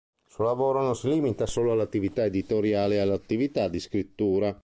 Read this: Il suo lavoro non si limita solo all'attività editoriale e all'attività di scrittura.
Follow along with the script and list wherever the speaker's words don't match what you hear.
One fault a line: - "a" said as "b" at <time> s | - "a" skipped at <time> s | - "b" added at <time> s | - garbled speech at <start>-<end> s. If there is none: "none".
none